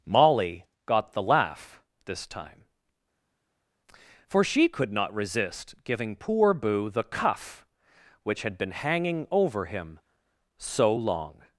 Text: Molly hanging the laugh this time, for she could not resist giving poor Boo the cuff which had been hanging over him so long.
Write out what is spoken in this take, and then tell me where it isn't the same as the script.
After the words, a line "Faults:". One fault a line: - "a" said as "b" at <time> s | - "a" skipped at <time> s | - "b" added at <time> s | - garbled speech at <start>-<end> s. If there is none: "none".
Molly got the laugh this time, for she could not resist giving poor Boo the cuff which had been hanging over him so long.
Faults:
- "hanging" said as "got" at 0.8 s